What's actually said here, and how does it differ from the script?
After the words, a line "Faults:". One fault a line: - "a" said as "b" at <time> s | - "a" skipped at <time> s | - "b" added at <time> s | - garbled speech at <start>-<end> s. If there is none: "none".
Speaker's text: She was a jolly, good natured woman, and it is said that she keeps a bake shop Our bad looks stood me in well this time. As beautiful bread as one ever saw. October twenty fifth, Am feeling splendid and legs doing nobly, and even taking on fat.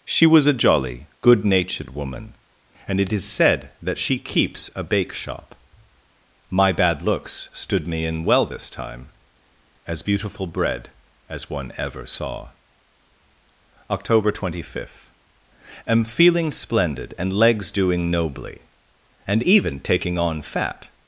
She was a jolly, good natured woman, and it is said that she keeps a bake shop My bad looks stood me in well this time. As beautiful bread as one ever saw. October twenty fifth, Am feeling splendid and legs doing nobly, and even taking on fat.
Faults:
- "Our" said as "My" at 6.5 s